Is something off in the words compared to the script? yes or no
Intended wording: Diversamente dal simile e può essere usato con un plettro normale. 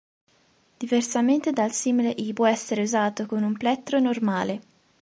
no